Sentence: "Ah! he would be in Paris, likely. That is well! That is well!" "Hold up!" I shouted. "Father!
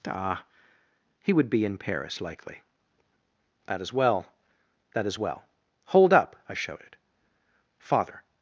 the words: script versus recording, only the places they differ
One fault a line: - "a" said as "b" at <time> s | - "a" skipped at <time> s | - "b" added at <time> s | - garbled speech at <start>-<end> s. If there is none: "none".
none